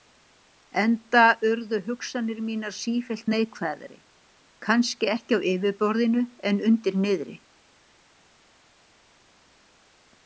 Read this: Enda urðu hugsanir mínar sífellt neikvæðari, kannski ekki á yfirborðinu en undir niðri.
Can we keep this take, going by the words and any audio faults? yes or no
yes